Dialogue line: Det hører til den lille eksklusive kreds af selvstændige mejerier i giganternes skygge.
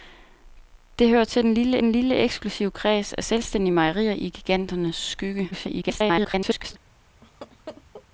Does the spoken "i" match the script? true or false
true